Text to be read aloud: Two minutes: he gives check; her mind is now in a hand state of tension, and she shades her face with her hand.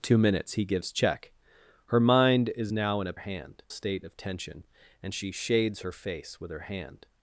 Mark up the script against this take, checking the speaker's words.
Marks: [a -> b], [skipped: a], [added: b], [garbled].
Two minutes: he gives check; her mind is now in a hand state of tension, and she shades her face with her hand.